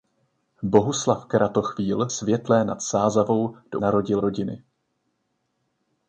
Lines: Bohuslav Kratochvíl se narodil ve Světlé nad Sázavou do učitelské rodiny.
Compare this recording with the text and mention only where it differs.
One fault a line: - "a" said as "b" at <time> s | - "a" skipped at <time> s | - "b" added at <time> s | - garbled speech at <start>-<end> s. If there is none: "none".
- "se narodil ve" skipped at 2.1 s
- "učitelské" said as "narodil" at 3.8 s